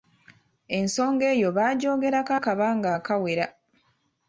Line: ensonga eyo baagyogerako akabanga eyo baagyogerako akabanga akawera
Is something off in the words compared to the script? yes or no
yes